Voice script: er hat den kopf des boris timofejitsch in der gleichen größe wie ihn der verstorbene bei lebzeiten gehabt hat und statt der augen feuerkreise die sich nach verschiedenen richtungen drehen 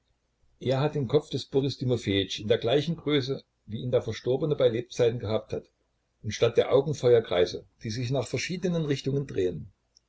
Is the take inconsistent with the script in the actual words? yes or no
no